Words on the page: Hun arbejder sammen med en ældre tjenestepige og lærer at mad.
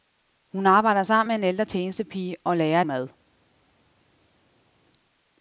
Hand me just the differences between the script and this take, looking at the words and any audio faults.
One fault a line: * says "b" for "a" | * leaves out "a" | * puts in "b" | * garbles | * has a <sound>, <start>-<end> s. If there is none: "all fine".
all fine